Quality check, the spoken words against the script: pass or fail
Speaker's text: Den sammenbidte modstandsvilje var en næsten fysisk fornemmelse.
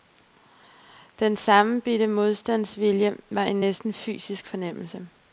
pass